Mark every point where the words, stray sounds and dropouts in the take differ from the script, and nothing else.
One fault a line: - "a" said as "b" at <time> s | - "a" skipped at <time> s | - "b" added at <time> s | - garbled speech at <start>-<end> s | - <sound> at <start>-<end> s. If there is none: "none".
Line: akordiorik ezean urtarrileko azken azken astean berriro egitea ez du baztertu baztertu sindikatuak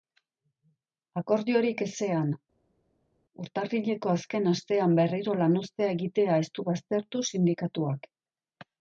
- "azken" skipped at 4.5 s
- "lanuztea" added at 5.4 s
- "baztertu" skipped at 7.3 s